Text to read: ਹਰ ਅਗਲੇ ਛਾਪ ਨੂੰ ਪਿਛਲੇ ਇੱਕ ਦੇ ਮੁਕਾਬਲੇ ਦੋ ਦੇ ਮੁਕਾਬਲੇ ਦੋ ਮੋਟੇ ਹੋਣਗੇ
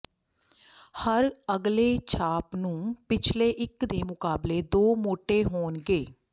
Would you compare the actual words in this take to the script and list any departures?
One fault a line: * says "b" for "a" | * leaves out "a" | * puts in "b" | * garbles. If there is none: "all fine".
* leaves out "ਦੇ ਮੁਕਾਬਲੇ ਦੋ"